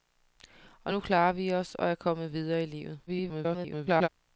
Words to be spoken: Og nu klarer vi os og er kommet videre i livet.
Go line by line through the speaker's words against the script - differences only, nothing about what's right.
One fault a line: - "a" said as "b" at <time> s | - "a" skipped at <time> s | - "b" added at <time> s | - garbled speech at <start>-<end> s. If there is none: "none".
- garbled speech at 3.1-4.1 s